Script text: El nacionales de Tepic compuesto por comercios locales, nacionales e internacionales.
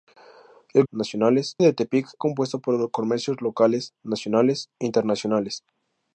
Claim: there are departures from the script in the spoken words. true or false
false